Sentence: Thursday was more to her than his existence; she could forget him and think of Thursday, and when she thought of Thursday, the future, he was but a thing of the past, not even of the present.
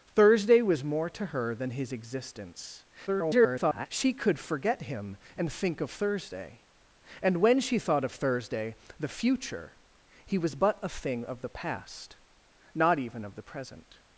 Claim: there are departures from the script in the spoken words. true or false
true